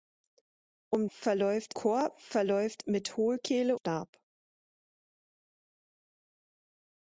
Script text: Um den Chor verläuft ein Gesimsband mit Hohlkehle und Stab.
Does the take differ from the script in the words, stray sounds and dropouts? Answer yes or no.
yes